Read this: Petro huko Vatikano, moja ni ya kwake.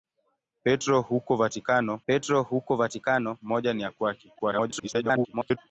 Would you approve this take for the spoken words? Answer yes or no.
no